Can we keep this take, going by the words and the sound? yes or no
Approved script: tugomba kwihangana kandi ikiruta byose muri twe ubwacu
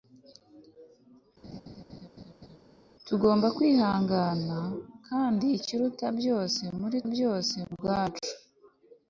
no